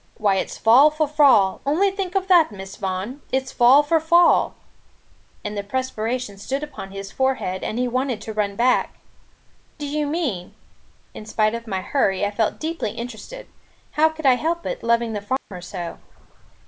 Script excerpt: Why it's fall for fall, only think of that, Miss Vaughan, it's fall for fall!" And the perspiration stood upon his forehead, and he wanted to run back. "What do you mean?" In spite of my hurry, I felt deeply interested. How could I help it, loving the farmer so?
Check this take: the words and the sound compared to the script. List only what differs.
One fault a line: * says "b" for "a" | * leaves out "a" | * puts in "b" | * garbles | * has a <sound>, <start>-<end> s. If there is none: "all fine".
* leaves out "What"
* has a dropout, 15.4-15.5 s